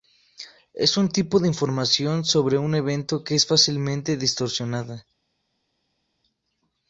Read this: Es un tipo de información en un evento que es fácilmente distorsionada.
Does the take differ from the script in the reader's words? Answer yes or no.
yes